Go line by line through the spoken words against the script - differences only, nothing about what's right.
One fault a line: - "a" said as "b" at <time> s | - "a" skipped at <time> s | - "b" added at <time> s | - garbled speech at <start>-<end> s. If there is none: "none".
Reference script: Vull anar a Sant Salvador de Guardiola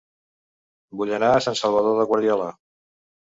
none